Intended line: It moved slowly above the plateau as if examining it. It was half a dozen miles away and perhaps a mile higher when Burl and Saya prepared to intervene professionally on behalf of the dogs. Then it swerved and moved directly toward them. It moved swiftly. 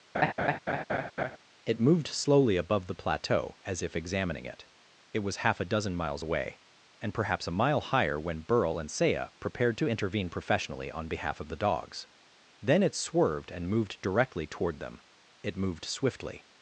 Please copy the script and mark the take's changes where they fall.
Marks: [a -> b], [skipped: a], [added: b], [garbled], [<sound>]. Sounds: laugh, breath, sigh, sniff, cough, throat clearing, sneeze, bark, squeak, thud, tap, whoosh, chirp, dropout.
[laugh] It moved slowly above the plateau as if examining it. It was half a dozen miles away and perhaps a mile higher when Burl and Saya prepared to intervene professionally on behalf of the dogs. Then it swerved and moved directly toward them. It moved swiftly.